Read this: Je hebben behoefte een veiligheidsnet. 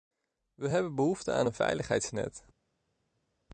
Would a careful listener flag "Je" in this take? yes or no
yes